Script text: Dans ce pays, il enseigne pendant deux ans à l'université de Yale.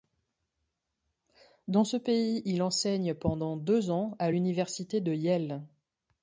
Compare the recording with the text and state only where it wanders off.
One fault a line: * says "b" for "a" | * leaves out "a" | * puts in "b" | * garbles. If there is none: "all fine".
all fine